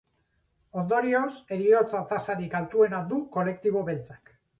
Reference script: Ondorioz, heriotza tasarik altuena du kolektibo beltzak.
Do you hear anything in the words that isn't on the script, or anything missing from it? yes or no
no